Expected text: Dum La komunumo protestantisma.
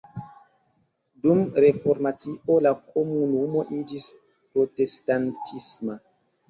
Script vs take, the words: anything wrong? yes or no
yes